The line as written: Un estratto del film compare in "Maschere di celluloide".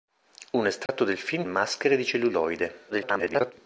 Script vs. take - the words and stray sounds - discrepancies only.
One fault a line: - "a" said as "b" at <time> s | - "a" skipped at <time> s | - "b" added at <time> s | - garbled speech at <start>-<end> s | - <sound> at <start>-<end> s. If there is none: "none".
- dropout at 0.9-0.9 s
- "compare in" skipped at 1.4 s
- garbled speech at 2.9-3.5 s